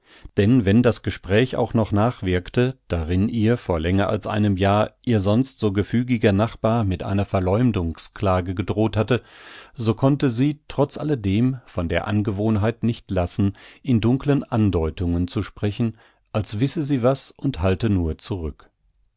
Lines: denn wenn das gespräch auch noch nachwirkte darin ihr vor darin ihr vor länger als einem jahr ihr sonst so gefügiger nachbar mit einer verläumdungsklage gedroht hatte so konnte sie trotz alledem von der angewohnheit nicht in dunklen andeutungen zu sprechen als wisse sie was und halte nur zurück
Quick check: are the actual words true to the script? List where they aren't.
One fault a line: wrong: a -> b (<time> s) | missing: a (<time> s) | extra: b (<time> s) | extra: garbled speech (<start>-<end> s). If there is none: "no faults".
missing: darin ihr vor (3.8 s)
extra: lassen (13.1 s)